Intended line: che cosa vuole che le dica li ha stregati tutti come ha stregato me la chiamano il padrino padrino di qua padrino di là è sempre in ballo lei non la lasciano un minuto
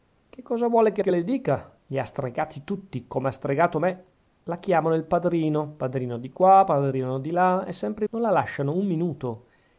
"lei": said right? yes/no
no